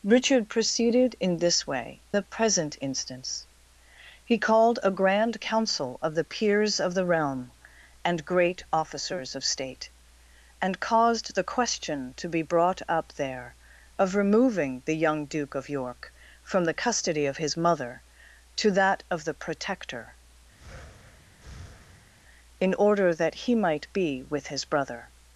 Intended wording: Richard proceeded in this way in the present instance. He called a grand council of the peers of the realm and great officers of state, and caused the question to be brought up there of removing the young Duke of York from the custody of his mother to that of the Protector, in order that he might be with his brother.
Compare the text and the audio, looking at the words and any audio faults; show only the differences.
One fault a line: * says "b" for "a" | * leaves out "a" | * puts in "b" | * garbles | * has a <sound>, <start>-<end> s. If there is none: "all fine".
* leaves out "in"
* has a breath, 20.6-22.1 s